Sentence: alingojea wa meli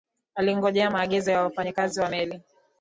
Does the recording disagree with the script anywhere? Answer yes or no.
yes